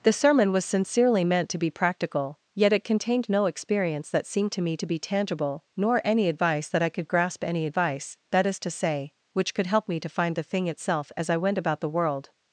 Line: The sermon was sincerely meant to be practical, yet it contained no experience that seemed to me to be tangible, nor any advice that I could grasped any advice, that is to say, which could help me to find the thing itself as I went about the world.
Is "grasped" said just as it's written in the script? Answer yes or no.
no